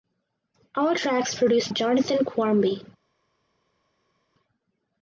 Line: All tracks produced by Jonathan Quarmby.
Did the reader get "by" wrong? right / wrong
wrong